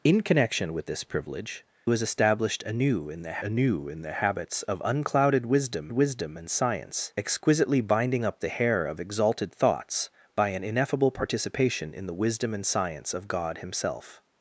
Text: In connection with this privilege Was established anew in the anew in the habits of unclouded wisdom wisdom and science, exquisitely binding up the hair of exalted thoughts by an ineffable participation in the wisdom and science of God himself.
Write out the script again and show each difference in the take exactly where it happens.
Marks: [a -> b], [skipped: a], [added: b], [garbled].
In connection with this privilege Was established anew in the anew in the habits of unclouded wisdom wisdom and science, exquisitely binding up the hair of exalted thoughts by an ineffable participation in the wisdom and science of God himself.